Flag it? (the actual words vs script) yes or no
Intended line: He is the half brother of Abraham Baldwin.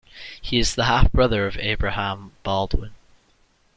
no